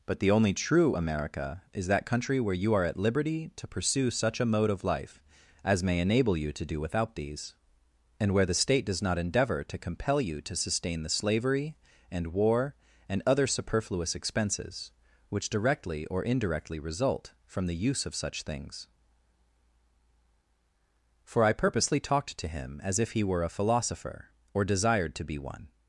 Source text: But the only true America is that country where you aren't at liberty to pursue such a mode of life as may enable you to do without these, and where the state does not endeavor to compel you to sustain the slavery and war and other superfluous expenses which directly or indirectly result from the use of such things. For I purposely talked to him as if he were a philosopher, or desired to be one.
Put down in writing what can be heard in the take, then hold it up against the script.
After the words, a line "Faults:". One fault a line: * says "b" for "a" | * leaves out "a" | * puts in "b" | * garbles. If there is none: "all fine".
But the only true America is that country where you are at liberty to pursue such a mode of life as may enable you to do without these, and where the state does not endeavor to compel you to sustain the slavery and war and other superfluous expenses which directly or indirectly result from the use of such things. For I purposely talked to him as if he were a philosopher, or desired to be one.
Faults:
* says "are" for "aren't"